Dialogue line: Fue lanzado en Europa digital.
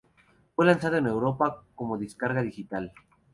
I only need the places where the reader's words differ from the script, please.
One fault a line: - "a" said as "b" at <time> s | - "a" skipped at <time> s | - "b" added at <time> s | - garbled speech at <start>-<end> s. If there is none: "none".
- "como descarga" added at 1.8 s